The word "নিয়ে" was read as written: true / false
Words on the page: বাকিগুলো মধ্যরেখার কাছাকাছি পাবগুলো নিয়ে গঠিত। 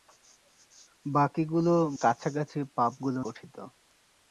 false